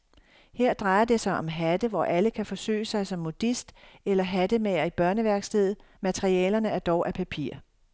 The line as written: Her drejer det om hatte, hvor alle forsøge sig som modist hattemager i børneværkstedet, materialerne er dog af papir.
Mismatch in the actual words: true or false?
true